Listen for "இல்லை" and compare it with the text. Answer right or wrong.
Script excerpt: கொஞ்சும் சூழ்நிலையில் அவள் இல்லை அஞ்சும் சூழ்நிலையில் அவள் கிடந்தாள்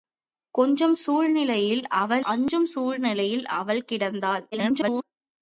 wrong